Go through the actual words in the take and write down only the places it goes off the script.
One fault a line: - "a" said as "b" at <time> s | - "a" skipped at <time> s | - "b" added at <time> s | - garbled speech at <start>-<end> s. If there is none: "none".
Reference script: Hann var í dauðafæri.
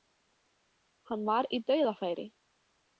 none